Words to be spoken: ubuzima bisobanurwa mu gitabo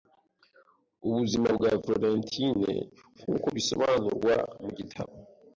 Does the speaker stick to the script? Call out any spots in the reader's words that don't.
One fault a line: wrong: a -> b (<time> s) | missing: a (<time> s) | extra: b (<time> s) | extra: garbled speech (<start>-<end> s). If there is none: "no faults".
extra: bwa Florentine nkuko (1.6 s)